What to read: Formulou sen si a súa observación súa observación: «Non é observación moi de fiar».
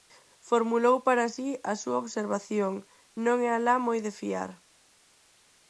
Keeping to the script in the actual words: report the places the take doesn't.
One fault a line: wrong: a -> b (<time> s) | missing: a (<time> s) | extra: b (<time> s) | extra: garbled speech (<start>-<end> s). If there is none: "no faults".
wrong: sen -> para (1.1 s)
missing: súa observación (2.7 s)
wrong: observación -> alá (3.5 s)